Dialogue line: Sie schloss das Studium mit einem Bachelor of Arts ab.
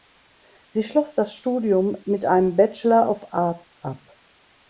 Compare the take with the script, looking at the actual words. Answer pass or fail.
pass